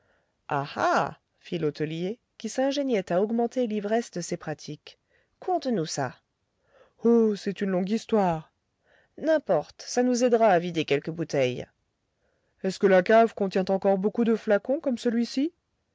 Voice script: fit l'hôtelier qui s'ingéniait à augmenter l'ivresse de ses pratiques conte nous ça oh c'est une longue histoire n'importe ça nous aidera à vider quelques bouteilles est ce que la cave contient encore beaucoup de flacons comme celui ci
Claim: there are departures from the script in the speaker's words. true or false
false